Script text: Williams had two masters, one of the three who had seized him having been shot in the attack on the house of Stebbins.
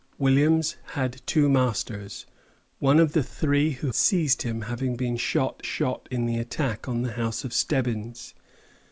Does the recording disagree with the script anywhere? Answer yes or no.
yes